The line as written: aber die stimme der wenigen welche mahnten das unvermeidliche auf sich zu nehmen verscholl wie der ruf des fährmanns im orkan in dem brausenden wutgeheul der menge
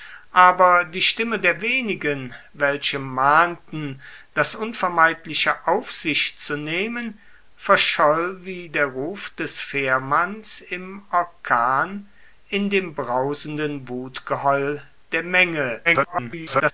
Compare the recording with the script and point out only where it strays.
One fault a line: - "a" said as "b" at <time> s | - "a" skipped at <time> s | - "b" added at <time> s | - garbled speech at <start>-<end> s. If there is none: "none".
- garbled speech at 15.8-16.7 s